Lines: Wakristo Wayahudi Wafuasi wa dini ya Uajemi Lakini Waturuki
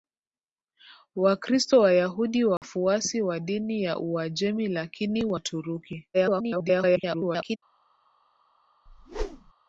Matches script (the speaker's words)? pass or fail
fail